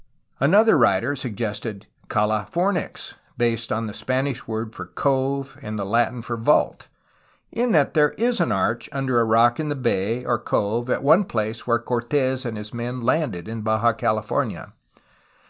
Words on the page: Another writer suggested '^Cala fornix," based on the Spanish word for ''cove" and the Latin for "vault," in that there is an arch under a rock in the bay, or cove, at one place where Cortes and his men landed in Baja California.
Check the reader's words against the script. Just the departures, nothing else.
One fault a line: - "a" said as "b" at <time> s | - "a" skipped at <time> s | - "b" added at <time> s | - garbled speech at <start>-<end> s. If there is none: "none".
none